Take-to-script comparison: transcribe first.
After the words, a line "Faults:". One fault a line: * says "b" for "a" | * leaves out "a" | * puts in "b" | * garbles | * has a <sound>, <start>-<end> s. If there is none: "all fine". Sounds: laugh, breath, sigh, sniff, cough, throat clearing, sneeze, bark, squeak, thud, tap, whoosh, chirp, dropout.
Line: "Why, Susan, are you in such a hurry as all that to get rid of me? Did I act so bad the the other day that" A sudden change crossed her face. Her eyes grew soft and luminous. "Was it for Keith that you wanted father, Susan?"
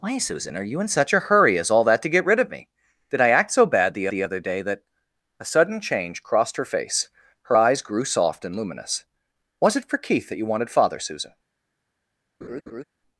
"Why, Susan, are you in such a hurry as all that to get rid of me? Did I act so bad the the other day that" A sudden change crossed her face. Her eyes grew soft and luminous. "Was it for Keith that you wanted father, Susan?"
Faults:
* has a laugh, 12.4-12.8 s